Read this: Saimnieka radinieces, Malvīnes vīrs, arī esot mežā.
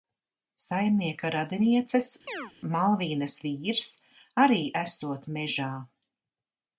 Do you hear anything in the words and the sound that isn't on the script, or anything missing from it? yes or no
yes